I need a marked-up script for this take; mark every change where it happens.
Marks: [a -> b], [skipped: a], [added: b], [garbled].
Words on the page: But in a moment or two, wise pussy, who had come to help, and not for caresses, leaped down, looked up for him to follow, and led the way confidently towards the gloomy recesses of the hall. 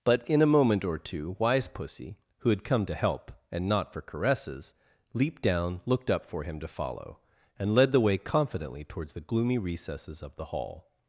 But in a moment or two, wise pussy, who had come to help, and not for caresses, leaped down, looked up for him to follow, and led the way confidently towards the gloomy recesses of the hall.